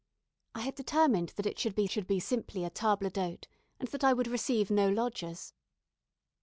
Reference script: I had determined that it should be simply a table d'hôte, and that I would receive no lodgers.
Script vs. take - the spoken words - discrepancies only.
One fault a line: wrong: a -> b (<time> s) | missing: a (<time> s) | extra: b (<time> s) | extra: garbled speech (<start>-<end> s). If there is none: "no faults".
extra: should be (1.9 s)